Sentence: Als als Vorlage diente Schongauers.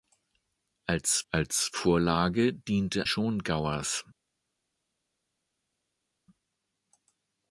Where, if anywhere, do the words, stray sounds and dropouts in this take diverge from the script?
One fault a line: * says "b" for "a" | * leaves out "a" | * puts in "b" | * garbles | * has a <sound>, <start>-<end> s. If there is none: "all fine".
all fine